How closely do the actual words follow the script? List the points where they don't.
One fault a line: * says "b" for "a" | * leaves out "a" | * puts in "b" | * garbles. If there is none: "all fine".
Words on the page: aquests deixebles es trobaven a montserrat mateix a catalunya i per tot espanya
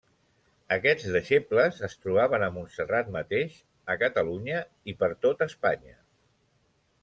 all fine